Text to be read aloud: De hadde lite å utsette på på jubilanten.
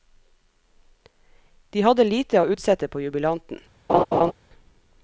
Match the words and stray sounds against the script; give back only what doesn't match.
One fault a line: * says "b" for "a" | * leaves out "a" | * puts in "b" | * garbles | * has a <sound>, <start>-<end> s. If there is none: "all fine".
* leaves out "på"
* has a laugh, 3.9-4.3 s